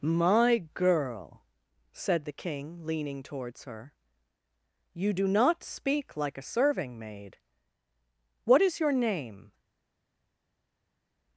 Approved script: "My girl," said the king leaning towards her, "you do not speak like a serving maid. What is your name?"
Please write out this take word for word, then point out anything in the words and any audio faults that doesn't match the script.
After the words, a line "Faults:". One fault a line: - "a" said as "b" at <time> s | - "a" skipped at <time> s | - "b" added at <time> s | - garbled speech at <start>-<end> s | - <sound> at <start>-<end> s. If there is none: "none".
"My girl," said the king leaning towards her, "you do not speak like a serving maid. What is your name?"
Faults:
none